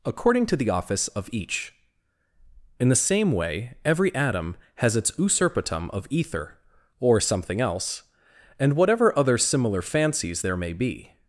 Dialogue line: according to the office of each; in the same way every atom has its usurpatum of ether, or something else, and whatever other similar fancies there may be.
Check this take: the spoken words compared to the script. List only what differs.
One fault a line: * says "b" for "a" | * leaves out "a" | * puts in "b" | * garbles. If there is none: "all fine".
all fine